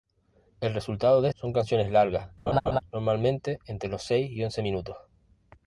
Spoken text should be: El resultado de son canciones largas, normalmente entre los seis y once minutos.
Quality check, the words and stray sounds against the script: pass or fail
fail